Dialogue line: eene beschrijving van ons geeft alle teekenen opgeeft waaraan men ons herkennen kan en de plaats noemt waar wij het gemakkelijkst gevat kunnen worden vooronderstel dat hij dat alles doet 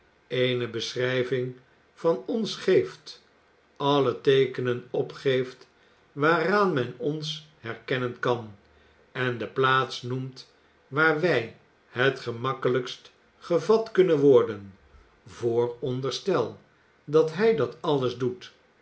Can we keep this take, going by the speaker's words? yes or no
yes